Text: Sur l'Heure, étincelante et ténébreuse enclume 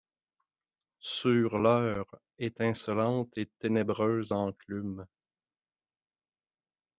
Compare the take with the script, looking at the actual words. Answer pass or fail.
pass